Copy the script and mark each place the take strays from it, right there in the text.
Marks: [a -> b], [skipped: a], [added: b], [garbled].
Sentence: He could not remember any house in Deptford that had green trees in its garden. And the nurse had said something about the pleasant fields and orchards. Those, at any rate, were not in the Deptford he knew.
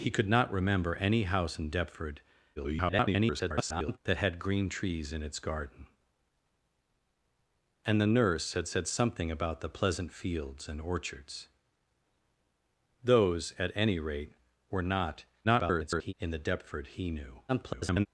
He could not remember any house in Deptford [garbled] that had green trees in its garden. And the nurse had said something about the pleasant fields and orchards. Those, at any rate, were not [garbled] in the Deptford he knew. [garbled]